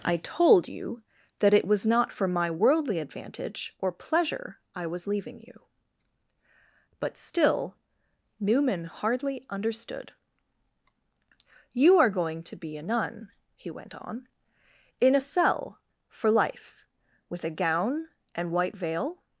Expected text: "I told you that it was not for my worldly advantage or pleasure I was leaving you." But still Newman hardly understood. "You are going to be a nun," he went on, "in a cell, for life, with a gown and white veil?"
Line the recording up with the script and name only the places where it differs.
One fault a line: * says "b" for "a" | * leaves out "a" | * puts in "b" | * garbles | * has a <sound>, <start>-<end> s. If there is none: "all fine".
all fine